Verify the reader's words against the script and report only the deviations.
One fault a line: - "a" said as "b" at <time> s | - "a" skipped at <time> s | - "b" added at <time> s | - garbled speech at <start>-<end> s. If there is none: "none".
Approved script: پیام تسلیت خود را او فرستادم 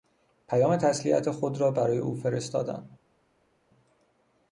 - "برای" added at 1.7 s